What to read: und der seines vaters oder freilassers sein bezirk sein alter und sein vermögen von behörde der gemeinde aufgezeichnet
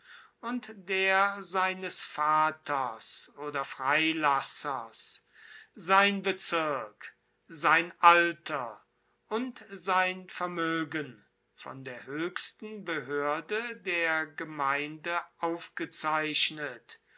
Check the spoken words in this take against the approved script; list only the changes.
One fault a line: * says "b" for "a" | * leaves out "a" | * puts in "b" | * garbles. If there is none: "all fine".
* puts in "der höchsten"